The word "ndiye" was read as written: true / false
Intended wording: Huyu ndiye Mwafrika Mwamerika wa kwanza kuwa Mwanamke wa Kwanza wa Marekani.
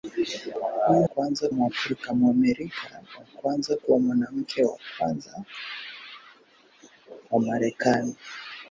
false